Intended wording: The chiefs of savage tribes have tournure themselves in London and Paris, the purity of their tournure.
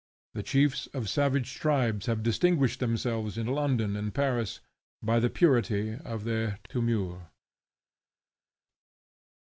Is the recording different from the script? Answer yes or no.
yes